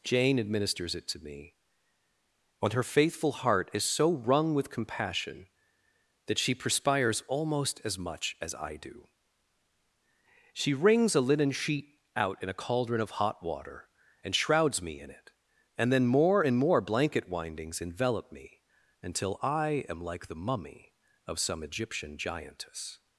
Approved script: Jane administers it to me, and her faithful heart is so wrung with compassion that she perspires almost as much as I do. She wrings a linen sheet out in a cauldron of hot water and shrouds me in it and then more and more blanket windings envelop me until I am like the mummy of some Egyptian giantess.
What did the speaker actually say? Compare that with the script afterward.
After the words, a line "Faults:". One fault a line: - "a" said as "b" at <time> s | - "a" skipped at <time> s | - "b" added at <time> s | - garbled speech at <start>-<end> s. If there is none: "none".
Jane administers it to me, and her faithful heart is so wrung with compassion that she perspires almost as much as I do. She wrings a linen sheet out in a cauldron of hot water and shrouds me in it and then more and more blanket windings envelop me until I am like the mummy of some Egyptian giantess.
Faults:
none